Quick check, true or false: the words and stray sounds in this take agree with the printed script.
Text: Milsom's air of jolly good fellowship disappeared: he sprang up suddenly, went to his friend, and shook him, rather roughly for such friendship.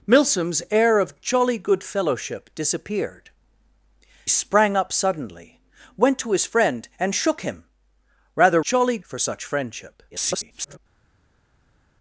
false